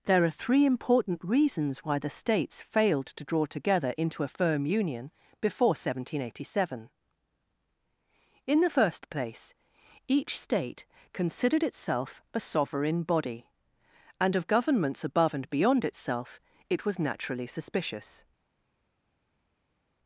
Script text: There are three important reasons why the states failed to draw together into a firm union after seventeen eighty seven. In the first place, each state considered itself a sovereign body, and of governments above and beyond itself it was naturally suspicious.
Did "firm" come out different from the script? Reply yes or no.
no